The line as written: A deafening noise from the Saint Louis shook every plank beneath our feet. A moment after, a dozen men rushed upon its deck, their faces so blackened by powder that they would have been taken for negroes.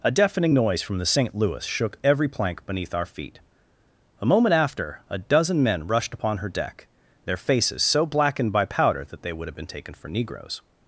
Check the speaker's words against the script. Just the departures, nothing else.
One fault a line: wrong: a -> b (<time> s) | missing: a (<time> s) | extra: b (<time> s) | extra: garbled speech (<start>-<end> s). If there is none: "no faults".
wrong: its -> her (6.4 s)